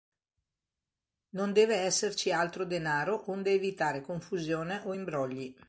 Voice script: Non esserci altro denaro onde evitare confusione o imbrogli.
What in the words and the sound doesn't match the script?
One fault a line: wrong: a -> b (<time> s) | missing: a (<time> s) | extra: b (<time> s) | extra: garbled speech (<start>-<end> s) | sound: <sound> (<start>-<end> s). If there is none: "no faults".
extra: deve (1.5 s)